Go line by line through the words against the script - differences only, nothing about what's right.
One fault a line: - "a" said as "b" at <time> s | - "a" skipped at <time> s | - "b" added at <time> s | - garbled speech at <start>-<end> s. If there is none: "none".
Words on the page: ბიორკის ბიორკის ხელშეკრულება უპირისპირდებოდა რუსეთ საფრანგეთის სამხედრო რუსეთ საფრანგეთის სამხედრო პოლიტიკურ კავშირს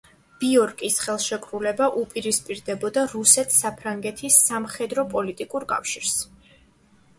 - "ბიორკის" skipped at 0.9 s
- "რუსეთ საფრანგეთის სამხედრო" skipped at 5.1 s